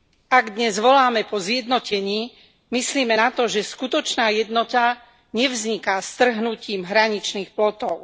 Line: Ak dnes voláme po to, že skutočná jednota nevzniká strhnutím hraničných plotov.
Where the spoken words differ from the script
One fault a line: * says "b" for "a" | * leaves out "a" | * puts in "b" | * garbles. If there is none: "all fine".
* puts in "zjednotení myslime na"